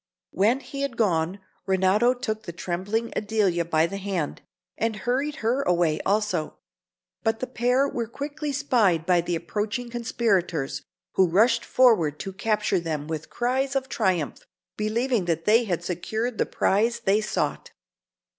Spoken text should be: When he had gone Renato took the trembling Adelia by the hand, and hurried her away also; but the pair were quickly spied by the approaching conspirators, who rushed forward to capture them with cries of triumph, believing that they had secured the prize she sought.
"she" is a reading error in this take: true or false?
true